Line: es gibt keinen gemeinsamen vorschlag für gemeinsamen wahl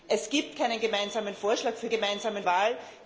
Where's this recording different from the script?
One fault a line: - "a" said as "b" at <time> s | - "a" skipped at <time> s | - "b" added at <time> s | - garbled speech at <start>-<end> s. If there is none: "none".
none